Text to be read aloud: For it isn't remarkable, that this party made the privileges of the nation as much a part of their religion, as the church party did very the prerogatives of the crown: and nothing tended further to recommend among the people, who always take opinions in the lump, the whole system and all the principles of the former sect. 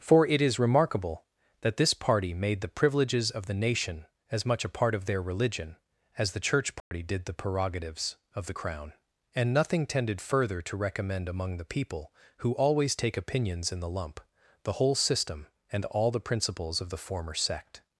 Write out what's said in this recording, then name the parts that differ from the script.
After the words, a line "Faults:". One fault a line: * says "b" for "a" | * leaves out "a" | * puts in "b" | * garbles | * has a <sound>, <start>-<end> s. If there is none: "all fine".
For it is remarkable, that this party made the privileges of the nation as much a part of their religion, as the church party did the prerogatives of the crown: and nothing tended further to recommend among the people, who always take opinions in the lump, the whole system and all the principles of the former sect.
Faults:
* says "is" for "isn't"
* has a dropout, 6.8-6.9 s
* leaves out "very"